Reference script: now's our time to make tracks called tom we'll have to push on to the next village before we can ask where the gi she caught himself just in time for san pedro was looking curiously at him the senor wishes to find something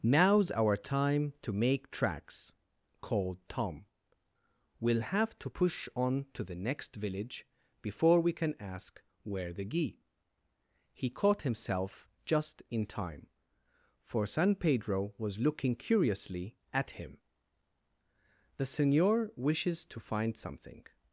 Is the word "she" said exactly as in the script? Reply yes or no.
no